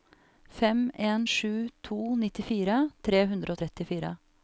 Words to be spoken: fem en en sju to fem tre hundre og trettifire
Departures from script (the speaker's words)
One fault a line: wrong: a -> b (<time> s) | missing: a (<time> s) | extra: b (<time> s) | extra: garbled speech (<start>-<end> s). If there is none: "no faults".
missing: en (1.3 s)
wrong: fem -> nittifire (2.2 s)